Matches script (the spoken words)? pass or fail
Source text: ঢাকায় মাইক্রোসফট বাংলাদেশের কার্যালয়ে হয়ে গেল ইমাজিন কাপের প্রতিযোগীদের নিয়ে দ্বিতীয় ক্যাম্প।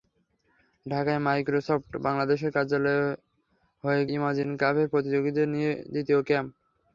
fail